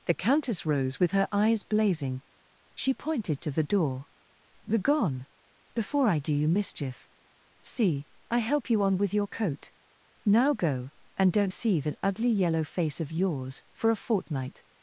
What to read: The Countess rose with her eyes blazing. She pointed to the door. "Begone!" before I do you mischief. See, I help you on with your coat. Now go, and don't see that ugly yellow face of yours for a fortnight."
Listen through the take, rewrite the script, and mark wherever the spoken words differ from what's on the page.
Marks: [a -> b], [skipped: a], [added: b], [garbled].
The Countess rose with her eyes blazing. She pointed to the door. "Begone!" before I do you mischief. See, I help you on with your coat. Now go, and don't see that ugly yellow face of yours for a fortnight."